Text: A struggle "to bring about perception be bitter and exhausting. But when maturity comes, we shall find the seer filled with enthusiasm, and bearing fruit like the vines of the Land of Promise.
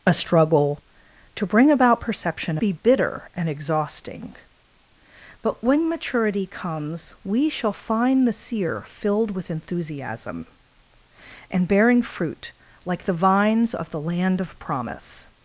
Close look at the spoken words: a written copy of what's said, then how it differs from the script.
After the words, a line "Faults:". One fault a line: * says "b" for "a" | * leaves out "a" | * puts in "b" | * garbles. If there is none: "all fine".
A struggle "to bring about perception be bitter and exhausting. But when maturity comes, we shall find the seer filled with enthusiasm, and bearing fruit like the vines of the Land of Promise.
Faults:
all fine